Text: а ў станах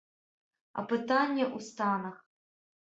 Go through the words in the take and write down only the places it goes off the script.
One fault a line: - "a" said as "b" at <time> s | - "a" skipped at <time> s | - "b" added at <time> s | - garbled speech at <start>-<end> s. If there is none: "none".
- "пытанне" added at 0.9 s